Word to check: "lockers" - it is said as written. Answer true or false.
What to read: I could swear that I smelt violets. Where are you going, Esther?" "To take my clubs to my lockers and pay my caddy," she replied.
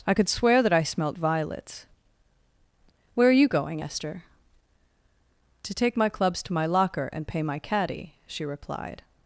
false